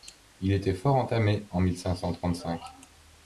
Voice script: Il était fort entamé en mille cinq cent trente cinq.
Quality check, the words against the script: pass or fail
pass